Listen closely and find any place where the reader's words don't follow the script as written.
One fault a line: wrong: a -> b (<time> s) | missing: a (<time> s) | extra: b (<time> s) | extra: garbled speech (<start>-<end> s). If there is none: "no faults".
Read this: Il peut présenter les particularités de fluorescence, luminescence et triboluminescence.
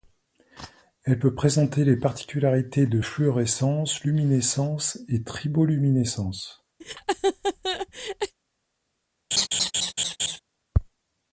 wrong: Il -> Elle (1.0 s)